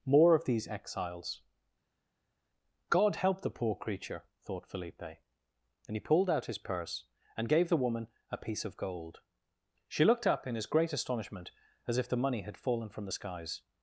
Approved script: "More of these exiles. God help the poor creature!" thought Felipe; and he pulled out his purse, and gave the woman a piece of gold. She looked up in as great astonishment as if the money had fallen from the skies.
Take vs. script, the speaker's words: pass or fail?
pass